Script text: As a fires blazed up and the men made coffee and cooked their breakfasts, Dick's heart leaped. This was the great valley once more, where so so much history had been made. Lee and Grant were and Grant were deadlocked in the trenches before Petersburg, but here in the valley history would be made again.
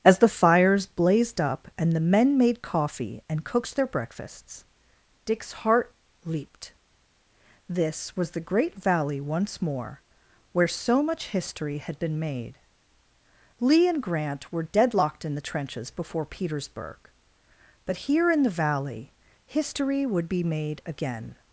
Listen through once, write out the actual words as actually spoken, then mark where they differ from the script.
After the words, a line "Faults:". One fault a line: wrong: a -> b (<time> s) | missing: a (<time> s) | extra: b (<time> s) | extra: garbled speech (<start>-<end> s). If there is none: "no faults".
As the fires blazed up and the men made coffee and cooked their breakfasts, Dick's heart leaped. This was the great valley once more, where so much history had been made. Lee and Grant were deadlocked in the trenches before Petersburg, but here in the valley history would be made again.
Faults:
wrong: a -> the (0.2 s)
missing: so (11.0 s)
missing: and Grant were (14.6 s)